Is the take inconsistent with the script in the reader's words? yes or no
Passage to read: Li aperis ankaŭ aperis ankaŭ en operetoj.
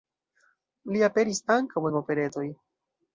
yes